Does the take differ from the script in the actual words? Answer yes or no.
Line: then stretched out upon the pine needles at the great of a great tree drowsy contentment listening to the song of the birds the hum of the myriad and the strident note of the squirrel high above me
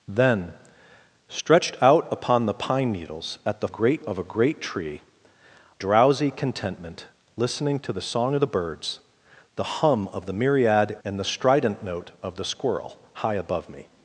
no